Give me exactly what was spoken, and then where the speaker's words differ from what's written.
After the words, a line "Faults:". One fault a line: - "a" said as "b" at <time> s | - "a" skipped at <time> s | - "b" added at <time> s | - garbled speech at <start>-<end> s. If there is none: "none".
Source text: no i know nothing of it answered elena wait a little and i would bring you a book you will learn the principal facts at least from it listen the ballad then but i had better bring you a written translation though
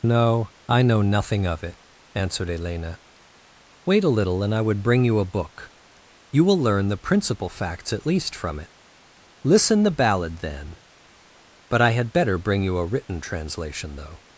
no i know nothing of it answered elena wait a little and i would bring you a book you will learn the principal facts at least from it listen the ballad then but i had better bring you a written translation though
Faults:
none